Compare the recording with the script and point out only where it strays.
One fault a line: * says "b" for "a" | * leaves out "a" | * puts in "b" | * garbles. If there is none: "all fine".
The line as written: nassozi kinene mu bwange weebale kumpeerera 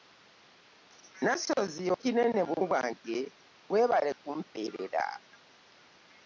all fine